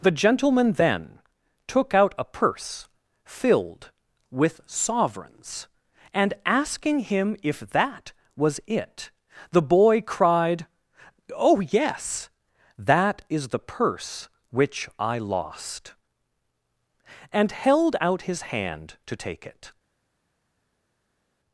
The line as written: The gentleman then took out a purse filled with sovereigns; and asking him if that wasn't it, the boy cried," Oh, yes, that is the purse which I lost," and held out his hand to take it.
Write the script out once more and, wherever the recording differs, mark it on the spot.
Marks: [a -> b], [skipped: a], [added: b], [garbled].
The gentleman then took out a purse filled with sovereigns; and asking him if that [wasn't -> was] it, the boy cried," Oh, yes, that is the purse which I lost," and held out his hand to take it.